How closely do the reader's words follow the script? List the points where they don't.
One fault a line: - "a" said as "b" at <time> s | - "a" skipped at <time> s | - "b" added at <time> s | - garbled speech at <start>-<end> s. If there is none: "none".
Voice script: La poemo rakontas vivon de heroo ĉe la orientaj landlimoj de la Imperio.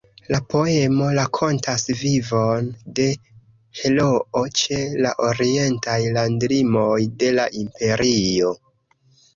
none